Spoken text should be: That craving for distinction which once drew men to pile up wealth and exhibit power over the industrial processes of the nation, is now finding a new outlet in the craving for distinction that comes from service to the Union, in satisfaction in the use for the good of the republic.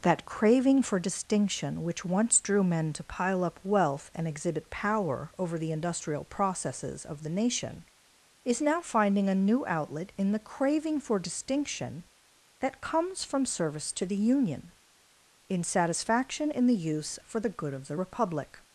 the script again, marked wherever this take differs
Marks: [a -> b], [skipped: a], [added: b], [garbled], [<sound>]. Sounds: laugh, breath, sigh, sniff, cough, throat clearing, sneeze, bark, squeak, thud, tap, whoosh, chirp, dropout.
That craving for distinction which once drew men to pile up wealth and exhibit power over the industrial processes of the nation, is now finding a new outlet in the craving for distinction that comes from service to the Union, in satisfaction in the use for the good of the republic.